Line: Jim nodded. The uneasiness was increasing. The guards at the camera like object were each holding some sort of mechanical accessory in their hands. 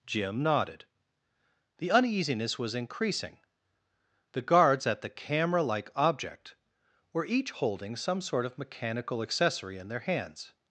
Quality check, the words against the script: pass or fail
pass